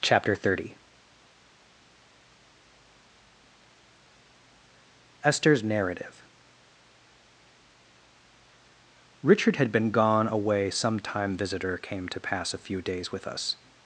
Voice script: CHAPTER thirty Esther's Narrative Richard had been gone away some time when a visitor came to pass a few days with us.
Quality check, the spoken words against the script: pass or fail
fail